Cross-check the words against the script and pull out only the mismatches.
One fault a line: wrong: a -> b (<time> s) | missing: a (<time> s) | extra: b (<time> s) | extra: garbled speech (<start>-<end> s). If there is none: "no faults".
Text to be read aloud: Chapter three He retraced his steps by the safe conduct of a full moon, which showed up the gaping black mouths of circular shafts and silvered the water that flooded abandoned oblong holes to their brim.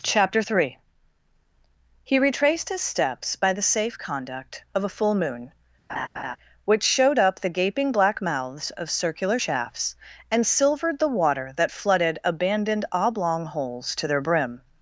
no faults